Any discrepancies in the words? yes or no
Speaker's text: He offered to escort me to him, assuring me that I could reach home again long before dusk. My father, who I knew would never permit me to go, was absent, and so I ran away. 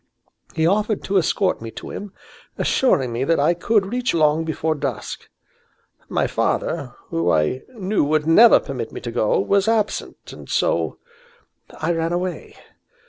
yes